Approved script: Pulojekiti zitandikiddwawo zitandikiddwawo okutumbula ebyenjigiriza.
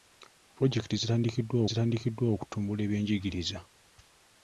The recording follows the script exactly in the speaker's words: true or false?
true